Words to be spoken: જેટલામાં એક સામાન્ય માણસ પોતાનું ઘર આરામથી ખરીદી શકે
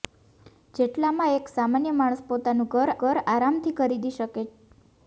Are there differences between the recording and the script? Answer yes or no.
yes